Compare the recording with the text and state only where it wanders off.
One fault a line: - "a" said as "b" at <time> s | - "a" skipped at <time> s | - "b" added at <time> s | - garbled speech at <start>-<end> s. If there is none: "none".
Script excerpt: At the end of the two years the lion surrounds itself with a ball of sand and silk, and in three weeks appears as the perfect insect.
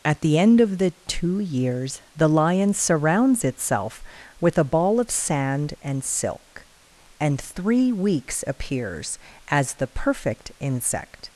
- "in" skipped at 7.4 s